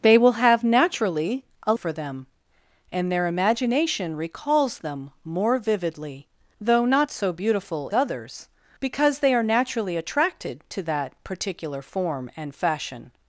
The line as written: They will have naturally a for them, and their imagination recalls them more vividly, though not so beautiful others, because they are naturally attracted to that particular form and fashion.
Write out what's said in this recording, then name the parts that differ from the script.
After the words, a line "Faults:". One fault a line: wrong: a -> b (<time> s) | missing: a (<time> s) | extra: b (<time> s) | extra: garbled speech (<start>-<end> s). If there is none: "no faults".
They will have naturally a for them, and their imagination recalls them more vividly, though not so beautiful others, because they are naturally attracted to that particular form and fashion.
Faults:
no faults